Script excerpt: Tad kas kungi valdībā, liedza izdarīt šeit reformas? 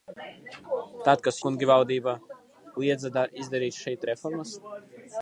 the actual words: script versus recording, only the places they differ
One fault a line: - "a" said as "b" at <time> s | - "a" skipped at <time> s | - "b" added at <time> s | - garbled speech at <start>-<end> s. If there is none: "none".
none